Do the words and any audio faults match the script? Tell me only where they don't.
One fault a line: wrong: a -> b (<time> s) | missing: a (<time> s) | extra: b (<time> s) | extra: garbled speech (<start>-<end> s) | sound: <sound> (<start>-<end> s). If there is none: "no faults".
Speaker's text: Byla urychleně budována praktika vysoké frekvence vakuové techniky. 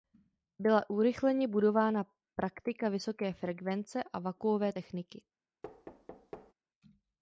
extra: a (4.0 s)
sound: thud (5.6-6.5 s)